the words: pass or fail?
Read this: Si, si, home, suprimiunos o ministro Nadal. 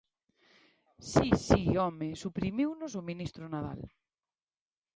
pass